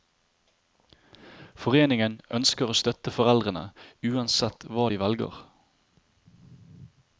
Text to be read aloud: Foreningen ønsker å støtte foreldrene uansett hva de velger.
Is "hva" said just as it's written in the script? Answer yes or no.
yes